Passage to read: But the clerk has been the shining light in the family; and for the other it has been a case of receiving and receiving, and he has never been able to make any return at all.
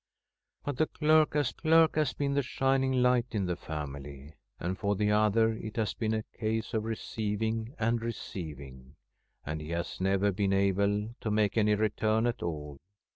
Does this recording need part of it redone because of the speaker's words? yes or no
yes